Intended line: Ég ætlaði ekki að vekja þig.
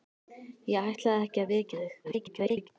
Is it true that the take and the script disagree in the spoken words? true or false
true